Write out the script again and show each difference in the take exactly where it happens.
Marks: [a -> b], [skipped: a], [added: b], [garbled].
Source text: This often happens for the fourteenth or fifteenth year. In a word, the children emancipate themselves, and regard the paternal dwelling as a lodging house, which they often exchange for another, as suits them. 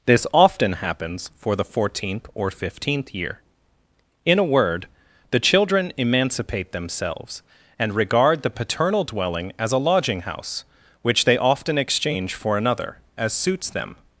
This often happens for the fourteenth or fifteenth year. In a word, the children emancipate themselves, and regard the paternal dwelling as a lodging house, which they often exchange for another, as suits them.